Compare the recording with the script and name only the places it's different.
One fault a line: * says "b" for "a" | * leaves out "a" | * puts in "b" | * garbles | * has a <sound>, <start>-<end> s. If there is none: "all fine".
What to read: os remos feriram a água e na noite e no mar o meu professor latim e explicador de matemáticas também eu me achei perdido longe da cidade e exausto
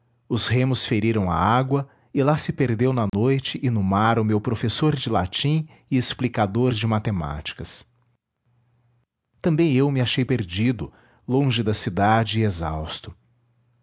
* puts in "lá se perdeu"
* has a dropout, 3.1-3.1 s
* puts in "de"